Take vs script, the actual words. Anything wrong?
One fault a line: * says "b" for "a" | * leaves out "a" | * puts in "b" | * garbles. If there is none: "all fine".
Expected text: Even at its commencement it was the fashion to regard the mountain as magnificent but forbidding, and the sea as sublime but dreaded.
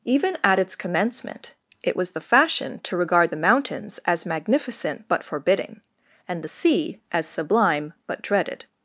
* says "mountains" for "mountain"